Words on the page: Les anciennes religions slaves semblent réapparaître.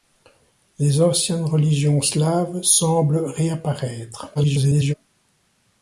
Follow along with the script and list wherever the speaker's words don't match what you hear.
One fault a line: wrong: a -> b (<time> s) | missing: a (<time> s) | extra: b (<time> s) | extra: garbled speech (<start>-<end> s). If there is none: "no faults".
extra: garbled speech (4.3-4.9 s)